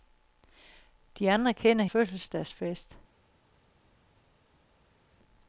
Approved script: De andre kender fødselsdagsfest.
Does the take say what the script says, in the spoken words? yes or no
yes